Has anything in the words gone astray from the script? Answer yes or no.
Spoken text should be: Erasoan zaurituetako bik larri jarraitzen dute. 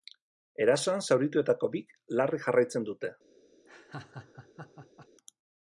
no